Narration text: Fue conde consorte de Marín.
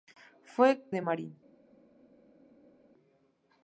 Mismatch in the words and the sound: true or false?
true